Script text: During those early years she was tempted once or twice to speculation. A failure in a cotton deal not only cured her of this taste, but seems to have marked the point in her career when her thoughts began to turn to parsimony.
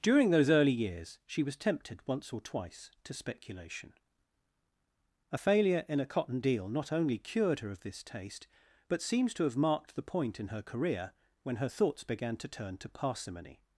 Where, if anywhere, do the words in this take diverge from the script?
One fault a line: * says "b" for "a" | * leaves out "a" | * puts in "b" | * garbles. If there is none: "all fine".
all fine